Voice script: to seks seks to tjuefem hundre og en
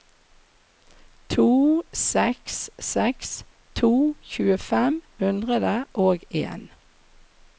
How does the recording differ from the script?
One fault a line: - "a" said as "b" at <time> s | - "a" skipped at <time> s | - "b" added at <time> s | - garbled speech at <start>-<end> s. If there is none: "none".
none